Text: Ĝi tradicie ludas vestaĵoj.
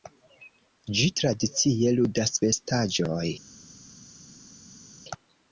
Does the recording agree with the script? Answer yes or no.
yes